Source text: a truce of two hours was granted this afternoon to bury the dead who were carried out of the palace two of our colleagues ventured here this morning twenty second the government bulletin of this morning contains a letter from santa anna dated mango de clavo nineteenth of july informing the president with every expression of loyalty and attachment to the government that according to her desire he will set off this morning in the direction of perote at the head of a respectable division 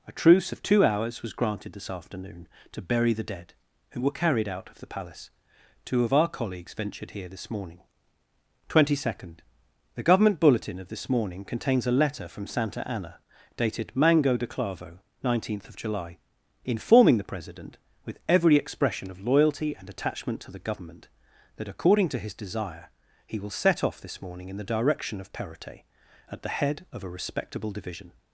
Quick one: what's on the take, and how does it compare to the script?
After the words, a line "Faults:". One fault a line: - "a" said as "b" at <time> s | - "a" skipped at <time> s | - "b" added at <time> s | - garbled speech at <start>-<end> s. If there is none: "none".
a truce of two hours was granted this afternoon to bury the dead who were carried out of the palace two of our colleagues ventured here this morning twenty second the government bulletin of this morning contains a letter from santa anna dated mango de clavo nineteenth of july informing the president with every expression of loyalty and attachment to the government that according to his desire he will set off this morning in the direction of perote at the head of a respectable division
Faults:
- "her" said as "his" at 22.2 s